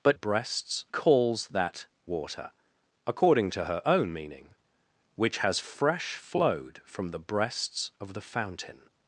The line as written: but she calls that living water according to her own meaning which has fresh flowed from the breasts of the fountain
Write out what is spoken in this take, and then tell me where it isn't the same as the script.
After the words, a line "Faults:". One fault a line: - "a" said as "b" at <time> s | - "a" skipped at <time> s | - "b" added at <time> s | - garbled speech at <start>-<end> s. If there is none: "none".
but breasts calls that water according to her own meaning which has fresh flowed from the breasts of the fountain
Faults:
- "she" said as "breasts" at 0.1 s
- "living" skipped at 1.9 s